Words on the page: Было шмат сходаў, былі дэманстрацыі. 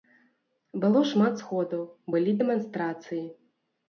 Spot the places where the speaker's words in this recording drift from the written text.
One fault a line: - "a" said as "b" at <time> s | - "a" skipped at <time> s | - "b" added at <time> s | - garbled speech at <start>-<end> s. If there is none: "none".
none